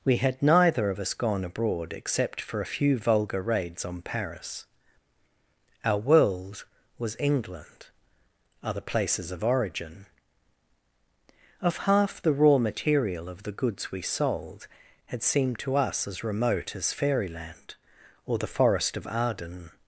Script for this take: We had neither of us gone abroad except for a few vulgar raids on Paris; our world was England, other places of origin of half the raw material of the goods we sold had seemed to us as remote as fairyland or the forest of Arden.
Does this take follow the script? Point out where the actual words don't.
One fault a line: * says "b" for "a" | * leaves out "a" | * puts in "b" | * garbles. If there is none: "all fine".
all fine